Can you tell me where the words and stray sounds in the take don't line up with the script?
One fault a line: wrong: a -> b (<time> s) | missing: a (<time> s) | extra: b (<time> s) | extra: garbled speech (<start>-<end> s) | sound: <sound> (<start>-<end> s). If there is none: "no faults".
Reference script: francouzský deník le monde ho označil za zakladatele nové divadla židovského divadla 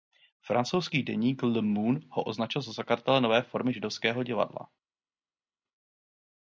wrong: divadla -> formy (3.4 s)